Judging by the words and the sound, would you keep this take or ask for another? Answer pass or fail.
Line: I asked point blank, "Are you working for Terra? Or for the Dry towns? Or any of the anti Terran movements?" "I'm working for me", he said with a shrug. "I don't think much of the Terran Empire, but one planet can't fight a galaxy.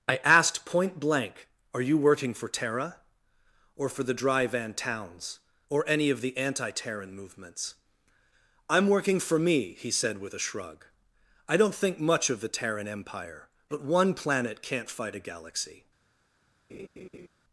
fail